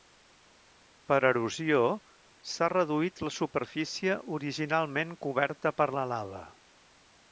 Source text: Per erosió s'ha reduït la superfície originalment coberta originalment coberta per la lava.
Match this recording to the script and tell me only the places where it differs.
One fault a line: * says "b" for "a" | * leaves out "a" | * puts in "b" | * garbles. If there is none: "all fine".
* leaves out "originalment coberta"